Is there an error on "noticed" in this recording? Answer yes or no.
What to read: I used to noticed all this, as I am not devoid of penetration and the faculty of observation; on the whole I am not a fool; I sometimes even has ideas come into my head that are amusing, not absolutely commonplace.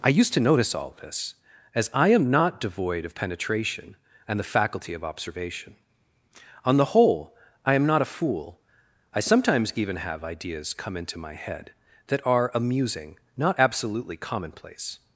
yes